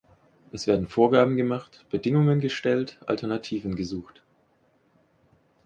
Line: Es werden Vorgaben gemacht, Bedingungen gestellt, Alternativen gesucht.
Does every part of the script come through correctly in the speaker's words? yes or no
yes